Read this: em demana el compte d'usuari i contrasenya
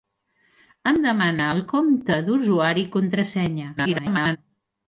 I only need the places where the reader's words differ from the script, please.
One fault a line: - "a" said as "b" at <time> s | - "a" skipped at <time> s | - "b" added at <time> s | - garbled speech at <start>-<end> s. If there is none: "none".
- garbled speech at 3.8-4.4 s